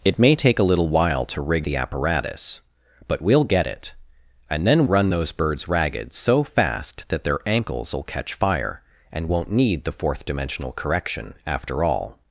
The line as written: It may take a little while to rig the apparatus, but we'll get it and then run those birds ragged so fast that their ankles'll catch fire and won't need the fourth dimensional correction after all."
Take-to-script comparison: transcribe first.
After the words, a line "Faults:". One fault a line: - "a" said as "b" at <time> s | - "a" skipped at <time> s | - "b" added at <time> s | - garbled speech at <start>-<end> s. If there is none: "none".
It may take a little while to rig the apparatus, but we'll get it and then run those birds ragged so fast that their ankles'll catch fire and won't need the fourth dimensional correction after all."
Faults:
none